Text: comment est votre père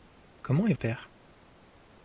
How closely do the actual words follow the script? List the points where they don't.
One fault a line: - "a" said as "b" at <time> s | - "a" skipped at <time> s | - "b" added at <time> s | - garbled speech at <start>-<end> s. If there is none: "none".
- "votre" skipped at 0.7 s